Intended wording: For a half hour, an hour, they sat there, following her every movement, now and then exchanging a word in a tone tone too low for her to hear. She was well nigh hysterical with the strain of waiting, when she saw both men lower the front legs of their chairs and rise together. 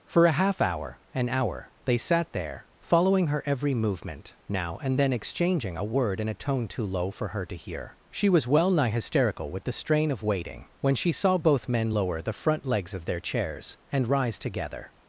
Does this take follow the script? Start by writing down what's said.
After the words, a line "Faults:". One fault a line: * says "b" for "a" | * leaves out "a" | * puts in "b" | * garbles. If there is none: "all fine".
For a half hour, an hour, they sat there, following her every movement, now and then exchanging a word in a tone too low for her to hear. She was well nigh hysterical with the strain of waiting, when she saw both men lower the front legs of their chairs and rise together.
Faults:
* leaves out "tone"